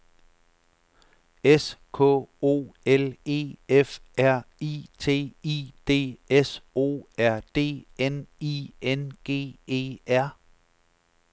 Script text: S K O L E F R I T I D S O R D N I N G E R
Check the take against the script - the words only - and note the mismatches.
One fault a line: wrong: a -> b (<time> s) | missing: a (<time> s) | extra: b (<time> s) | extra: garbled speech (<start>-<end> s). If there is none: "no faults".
no faults